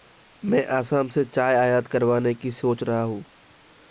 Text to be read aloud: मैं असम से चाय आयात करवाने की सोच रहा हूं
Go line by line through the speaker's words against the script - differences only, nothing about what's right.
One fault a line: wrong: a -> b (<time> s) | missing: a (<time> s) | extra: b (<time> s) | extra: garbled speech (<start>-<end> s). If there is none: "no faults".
no faults